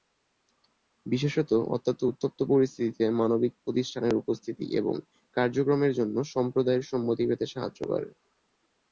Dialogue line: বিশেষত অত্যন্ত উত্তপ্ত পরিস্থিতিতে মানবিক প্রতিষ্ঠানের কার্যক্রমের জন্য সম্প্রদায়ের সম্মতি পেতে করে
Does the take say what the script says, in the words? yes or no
no